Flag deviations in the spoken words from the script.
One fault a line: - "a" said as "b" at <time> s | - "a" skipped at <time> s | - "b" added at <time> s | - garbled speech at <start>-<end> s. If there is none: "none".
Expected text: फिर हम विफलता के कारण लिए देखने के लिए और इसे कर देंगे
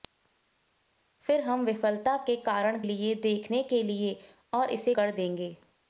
none